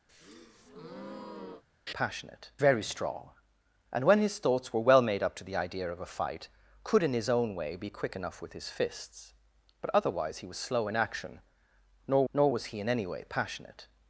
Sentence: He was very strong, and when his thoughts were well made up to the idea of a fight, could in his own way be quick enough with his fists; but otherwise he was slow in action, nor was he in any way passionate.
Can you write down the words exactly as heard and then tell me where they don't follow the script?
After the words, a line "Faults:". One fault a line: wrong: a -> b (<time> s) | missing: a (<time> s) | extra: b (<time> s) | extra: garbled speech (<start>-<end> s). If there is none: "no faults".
He passionate very strong, and when his thoughts were well made up to the idea of a fight, could in his own way be quick enough with his fists; but otherwise he was slow in action, nor nor was he in any way passionate.
Faults:
wrong: was -> passionate (1.9 s)
extra: nor (12.3 s)